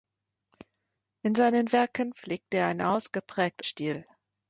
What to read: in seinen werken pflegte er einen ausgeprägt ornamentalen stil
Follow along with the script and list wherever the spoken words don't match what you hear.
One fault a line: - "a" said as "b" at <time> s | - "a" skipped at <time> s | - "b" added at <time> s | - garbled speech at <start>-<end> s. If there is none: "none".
- "ornamentalen" skipped at 3.7 s